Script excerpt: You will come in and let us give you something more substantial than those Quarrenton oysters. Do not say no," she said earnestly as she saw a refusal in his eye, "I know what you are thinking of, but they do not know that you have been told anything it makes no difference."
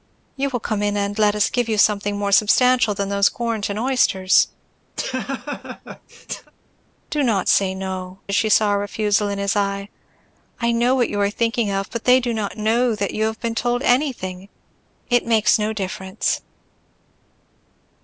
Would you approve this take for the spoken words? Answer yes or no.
no